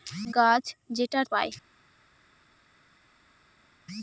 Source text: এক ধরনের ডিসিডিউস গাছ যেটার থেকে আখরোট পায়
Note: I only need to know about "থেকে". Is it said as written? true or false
false